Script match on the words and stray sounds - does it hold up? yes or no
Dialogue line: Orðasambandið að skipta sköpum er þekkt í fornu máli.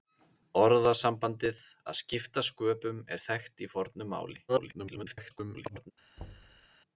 no